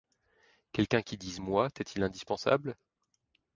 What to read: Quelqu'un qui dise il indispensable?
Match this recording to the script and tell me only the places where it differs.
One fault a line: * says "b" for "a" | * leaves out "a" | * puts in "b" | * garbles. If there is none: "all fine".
* puts in "moi t'est"